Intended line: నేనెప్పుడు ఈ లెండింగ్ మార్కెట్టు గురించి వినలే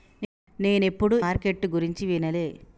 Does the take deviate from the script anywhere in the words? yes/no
yes